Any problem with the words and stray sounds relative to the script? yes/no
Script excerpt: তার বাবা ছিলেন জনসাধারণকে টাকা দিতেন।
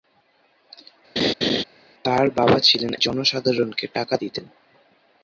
yes